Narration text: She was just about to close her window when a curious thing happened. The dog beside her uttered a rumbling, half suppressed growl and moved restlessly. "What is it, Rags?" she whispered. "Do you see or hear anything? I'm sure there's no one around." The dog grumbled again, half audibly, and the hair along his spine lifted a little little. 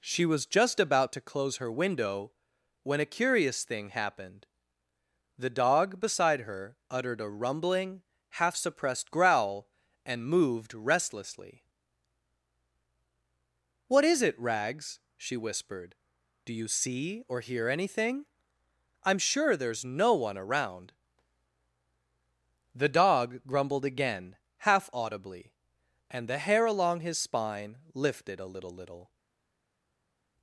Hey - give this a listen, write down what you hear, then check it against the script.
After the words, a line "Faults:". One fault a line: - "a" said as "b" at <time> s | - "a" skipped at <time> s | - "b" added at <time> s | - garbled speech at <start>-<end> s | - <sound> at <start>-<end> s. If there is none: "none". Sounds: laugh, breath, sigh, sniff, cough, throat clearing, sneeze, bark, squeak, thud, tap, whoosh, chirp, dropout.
She was just about to close her window when a curious thing happened. The dog beside her uttered a rumbling, half suppressed growl and moved restlessly. "What is it, Rags?" she whispered. "Do you see or hear anything? I'm sure there's no one around." The dog grumbled again, half audibly, and the hair along his spine lifted a little little.
Faults:
none